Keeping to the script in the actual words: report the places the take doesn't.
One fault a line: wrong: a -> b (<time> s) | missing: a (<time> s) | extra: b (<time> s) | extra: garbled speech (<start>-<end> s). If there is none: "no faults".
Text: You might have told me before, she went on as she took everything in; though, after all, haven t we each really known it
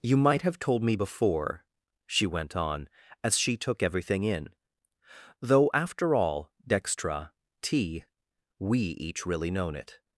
wrong: haven -> dextra (6.6 s)